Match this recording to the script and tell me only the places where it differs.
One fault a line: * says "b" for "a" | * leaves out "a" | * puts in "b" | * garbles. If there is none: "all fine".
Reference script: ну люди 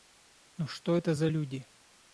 * puts in "что это за"